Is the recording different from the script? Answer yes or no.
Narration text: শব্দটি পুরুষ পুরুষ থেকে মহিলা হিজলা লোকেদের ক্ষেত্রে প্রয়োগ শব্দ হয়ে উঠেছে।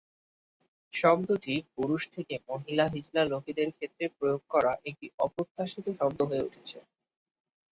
yes